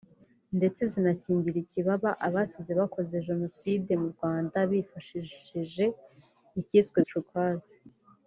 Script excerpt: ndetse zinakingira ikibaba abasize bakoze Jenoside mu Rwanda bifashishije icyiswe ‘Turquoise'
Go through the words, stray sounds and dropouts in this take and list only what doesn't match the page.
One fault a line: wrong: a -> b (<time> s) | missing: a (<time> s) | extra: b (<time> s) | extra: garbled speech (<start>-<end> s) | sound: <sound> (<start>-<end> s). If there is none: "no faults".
no faults